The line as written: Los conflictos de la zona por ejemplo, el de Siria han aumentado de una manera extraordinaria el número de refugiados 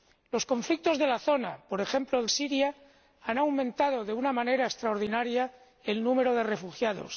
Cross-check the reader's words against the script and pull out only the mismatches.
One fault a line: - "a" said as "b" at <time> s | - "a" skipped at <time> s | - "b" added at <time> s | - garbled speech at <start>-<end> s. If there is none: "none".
- "de" skipped at 2.3 s